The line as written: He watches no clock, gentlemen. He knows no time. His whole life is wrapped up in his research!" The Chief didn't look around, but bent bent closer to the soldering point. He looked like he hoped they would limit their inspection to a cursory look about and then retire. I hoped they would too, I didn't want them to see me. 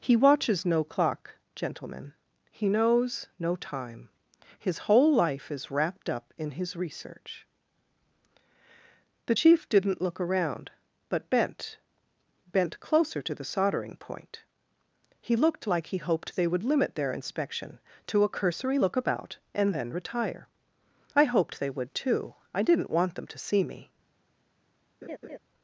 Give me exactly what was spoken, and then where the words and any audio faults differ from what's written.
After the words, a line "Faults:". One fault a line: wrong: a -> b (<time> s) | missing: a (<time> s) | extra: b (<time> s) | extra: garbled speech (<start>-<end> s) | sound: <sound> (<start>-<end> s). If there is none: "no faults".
He watches no clock, gentlemen. He knows no time. His whole life is wrapped up in his research!" The Chief didn't look around, but bent bent closer to the soldering point. He looked like he hoped they would limit their inspection to a cursory look about and then retire. I hoped they would too, I didn't want them to see me.
Faults:
sound: laugh (25.0-25.4 s)